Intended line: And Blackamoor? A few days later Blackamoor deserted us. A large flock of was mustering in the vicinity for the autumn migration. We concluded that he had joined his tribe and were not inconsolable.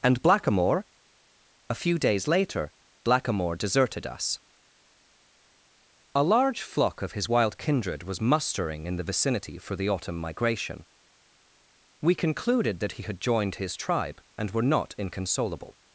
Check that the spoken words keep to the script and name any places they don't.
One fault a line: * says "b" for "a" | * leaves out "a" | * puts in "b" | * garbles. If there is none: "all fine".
* puts in "his wild kindred"